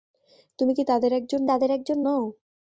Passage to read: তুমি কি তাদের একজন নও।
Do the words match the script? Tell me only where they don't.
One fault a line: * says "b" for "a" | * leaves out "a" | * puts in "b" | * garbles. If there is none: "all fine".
* puts in "তাদের একজন"